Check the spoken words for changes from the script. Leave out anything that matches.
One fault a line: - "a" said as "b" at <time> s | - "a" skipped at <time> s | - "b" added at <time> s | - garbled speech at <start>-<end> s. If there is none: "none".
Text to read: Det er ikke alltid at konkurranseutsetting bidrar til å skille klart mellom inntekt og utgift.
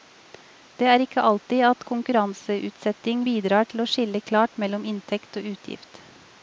none